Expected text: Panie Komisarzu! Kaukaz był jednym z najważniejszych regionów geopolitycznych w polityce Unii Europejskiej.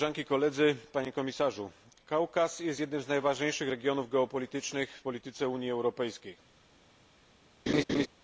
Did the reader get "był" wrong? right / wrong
wrong